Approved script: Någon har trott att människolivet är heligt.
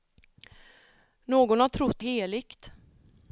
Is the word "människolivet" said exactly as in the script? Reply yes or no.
no